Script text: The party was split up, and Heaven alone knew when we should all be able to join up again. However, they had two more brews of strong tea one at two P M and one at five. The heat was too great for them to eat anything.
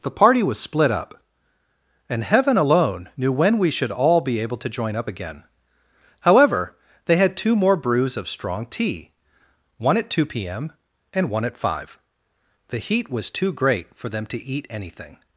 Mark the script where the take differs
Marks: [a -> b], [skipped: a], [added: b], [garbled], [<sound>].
The party was split up, and Heaven alone knew when we should all be able to join up again. However, they had two more brews of strong tea one at two P M and one at five. The heat was too great for them to eat anything.